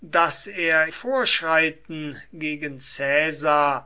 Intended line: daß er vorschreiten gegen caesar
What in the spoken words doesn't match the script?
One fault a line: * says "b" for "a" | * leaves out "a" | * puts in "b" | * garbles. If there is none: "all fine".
all fine